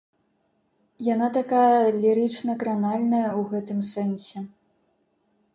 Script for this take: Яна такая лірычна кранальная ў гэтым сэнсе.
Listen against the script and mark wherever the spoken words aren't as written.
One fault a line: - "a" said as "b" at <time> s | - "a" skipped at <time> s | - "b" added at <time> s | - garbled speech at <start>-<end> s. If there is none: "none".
none